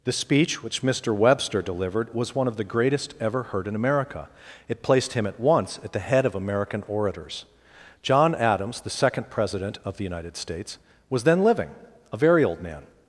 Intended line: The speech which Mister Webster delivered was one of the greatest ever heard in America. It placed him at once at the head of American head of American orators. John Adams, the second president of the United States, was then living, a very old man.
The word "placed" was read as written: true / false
true